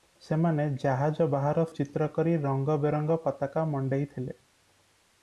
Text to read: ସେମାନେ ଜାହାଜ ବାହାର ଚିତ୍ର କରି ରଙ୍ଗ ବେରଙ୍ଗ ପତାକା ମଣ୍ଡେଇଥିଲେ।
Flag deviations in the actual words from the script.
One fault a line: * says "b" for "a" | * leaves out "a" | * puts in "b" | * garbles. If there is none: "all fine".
all fine